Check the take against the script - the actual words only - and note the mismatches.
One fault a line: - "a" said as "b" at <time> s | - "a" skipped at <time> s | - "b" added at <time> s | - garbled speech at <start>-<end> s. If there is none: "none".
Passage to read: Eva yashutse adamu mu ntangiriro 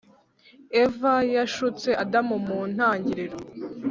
none